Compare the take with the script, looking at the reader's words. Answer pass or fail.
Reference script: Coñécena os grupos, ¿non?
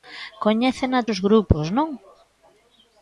pass